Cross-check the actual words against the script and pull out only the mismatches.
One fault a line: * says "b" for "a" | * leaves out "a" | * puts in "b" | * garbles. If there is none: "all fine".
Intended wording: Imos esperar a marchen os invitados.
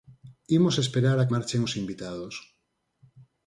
all fine